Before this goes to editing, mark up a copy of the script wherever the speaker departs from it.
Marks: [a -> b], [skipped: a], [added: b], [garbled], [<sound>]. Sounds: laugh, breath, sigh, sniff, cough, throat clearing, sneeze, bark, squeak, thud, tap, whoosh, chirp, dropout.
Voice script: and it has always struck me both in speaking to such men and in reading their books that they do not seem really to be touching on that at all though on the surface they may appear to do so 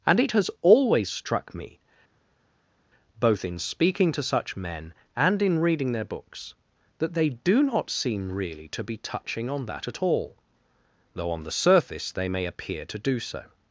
and it has always struck me both in speaking to such men and in reading their books that they do not seem really to be touching on that at all though on the surface they may appear to do so